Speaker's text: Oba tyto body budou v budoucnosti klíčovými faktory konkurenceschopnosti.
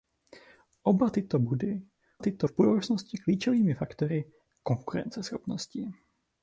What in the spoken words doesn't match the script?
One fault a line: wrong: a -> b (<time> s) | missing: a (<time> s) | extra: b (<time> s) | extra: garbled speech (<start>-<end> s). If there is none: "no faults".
wrong: budou -> tyto (2.2 s)